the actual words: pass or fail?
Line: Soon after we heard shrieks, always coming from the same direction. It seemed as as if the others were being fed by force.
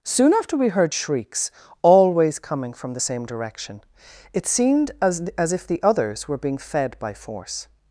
pass